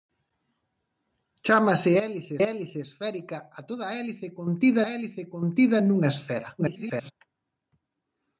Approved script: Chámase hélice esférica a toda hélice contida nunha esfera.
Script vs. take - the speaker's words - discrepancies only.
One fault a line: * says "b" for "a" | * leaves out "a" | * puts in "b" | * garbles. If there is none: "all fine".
* puts in "hélice"
* puts in "hélice contida"
* garbles